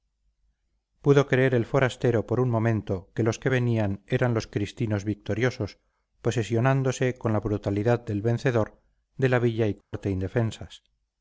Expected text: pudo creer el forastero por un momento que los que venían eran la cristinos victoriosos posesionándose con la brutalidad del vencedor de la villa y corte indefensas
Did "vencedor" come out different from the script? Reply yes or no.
no